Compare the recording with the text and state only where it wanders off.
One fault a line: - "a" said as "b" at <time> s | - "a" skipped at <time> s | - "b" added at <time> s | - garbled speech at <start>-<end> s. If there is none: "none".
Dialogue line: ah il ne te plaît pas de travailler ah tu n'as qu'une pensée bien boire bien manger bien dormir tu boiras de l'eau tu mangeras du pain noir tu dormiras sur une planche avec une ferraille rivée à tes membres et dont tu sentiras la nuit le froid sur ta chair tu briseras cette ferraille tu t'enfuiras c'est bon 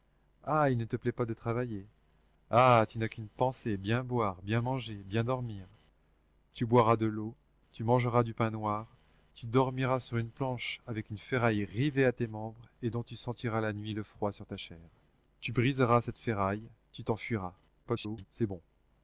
- garbled speech at 17.8-18.3 s